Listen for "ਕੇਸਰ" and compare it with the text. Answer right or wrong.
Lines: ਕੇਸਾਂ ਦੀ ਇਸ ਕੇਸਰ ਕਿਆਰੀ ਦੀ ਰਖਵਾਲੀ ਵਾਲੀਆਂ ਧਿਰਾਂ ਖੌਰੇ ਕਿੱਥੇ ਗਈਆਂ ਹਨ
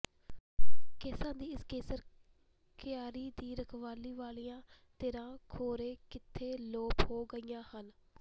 right